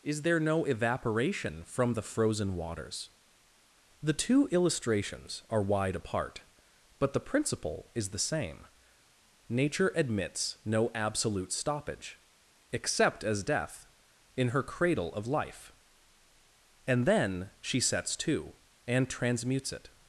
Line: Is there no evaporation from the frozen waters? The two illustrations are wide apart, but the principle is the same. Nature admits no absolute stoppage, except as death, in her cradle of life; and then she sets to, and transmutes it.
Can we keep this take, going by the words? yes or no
yes